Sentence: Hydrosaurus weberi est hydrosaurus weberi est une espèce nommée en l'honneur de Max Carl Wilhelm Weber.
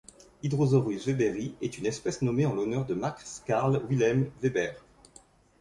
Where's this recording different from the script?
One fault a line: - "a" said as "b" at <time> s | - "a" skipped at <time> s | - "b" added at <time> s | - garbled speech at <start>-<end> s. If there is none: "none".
- "hydrosaurus weberi est" skipped at 1.8 s